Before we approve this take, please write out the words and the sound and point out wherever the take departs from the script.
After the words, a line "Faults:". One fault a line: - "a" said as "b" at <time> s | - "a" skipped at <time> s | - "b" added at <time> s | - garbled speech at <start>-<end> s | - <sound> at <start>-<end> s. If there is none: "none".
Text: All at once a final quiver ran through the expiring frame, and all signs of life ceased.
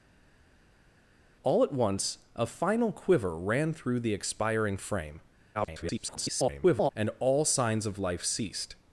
All at once a final quiver ran through the expiring frame, [garbled] and all signs of life ceased.
Faults:
- garbled speech at 5.5-6.9 s